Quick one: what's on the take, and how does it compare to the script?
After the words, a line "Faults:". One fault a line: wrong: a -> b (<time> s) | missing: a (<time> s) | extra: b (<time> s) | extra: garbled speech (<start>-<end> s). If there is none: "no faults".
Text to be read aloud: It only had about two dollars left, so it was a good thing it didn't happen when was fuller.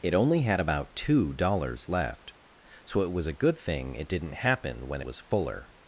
It only had about two dollars left, so it was a good thing it didn't happen when was fuller.
Faults:
no faults